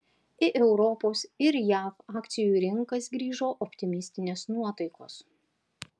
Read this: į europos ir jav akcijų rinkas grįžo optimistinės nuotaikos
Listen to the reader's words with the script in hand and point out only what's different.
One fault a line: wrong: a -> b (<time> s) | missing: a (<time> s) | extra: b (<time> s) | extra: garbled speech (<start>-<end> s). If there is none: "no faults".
no faults